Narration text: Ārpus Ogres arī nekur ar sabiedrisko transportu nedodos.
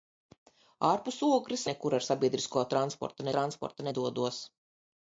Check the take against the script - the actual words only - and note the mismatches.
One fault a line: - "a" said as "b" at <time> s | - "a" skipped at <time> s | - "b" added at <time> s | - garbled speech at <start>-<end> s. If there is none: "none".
- "arī" skipped at 1.6 s
- "transportu" added at 3.4 s